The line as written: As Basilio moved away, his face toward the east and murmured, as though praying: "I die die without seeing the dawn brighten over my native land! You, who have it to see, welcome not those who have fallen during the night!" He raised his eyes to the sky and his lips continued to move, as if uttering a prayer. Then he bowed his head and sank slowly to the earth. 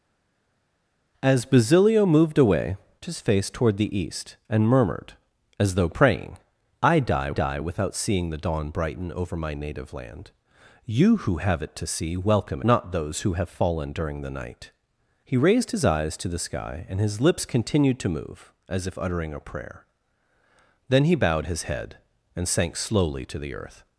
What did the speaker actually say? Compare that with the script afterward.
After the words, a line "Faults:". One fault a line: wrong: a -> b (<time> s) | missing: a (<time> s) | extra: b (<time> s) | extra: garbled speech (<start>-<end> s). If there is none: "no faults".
As Basilio moved away, his face toward the east and murmured, as though praying: "I die die without seeing the dawn brighten over my native land! You, who have it to see, welcome not those who have fallen during the night!" He raised his eyes to the sky and his lips continued to move, as if uttering a prayer. Then he bowed his head and sank slowly to the earth.
Faults:
no faults